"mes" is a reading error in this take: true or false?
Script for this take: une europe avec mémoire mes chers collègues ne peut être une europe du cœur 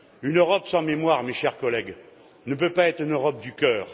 false